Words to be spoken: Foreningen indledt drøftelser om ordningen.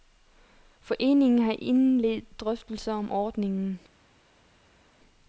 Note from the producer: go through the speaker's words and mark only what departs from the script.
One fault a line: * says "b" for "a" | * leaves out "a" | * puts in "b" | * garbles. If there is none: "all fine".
* puts in "har"